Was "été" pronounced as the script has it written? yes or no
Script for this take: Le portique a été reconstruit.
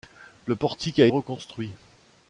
no